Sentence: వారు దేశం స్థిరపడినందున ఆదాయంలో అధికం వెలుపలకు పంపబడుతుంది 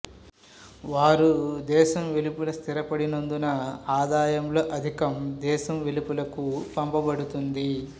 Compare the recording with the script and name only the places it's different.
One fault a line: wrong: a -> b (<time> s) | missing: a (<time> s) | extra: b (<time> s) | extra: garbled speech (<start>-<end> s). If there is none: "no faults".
extra: వెలుపల (2.1 s)
extra: దేశం (5.4 s)